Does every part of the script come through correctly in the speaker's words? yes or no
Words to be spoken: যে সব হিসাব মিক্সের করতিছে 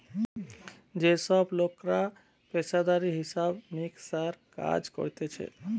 no